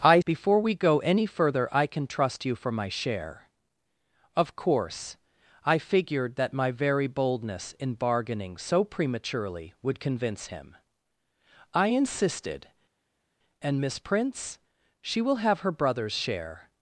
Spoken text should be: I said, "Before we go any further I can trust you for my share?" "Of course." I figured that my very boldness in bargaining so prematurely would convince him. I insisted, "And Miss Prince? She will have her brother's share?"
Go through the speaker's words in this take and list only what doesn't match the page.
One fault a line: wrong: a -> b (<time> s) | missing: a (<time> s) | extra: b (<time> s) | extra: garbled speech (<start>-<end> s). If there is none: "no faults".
missing: said (0.2 s)